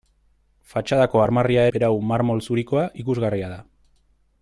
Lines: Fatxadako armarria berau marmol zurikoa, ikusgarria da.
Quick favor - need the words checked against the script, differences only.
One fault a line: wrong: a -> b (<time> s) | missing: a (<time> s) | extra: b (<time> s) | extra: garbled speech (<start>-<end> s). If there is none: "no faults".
no faults